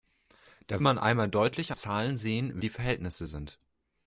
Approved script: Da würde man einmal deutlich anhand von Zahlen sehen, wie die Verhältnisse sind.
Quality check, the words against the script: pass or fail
fail